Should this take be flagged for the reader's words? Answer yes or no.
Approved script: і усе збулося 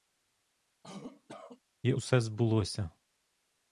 no